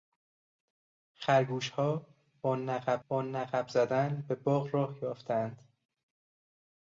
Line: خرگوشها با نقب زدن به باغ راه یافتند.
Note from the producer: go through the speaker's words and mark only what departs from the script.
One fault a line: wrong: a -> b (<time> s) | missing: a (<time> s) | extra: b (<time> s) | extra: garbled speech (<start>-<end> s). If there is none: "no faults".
extra: با نقب (3.1 s)